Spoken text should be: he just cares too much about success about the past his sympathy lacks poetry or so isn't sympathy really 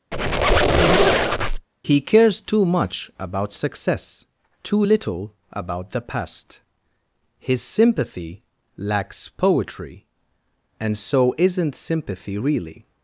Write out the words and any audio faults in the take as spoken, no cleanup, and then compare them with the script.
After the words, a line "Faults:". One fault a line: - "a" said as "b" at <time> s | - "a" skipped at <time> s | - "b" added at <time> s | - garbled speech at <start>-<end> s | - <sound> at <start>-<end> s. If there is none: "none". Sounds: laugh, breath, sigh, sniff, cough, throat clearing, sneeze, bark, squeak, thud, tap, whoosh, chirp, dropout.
he cares too much about success too little about the past his sympathy lacks poetry and so isn't sympathy really
Faults:
- squeak at 0.1-1.7 s
- "just" skipped at 2.0 s
- "too little" added at 4.6 s
- "or" said as "and" at 10.8 s